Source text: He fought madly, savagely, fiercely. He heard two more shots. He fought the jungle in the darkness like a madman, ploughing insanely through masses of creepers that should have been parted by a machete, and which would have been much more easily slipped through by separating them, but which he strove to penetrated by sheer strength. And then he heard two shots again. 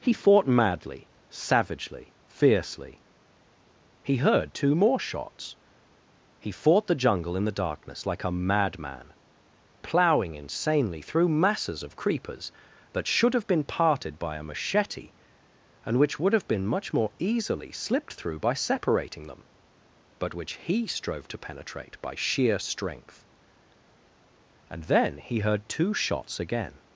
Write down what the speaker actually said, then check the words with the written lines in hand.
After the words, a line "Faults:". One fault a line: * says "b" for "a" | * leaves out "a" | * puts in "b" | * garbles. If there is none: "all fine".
He fought madly, savagely, fiercely. He heard two more shots. He fought the jungle in the darkness like a madman, ploughing insanely through masses of creepers that should have been parted by a machete, and which would have been much more easily slipped through by separating them, but which he strove to penetrate by sheer strength. And then he heard two shots again.
Faults:
* says "penetrate" for "penetrated"